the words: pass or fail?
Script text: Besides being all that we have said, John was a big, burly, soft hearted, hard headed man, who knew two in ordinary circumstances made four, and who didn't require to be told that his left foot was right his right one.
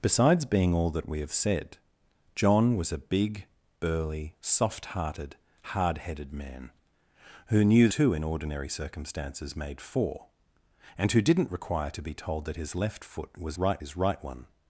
pass